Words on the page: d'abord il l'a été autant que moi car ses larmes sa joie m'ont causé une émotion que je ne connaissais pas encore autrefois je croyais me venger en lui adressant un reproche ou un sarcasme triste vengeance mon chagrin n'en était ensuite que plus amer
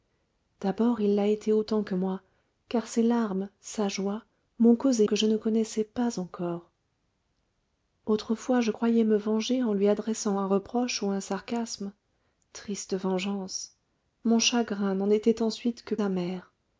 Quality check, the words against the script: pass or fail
fail